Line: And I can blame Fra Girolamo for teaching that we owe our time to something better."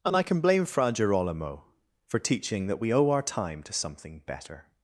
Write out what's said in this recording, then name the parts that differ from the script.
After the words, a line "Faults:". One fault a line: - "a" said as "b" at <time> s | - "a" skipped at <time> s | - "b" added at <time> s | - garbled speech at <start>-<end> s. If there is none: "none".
And I can blame Fra Girolamo for teaching that we owe our time to something better."
Faults:
none